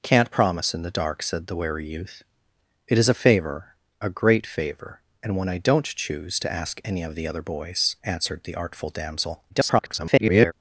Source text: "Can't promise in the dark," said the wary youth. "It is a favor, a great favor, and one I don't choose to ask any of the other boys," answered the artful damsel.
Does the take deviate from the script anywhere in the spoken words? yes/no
yes